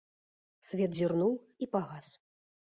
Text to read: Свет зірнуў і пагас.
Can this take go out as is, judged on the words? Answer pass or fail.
pass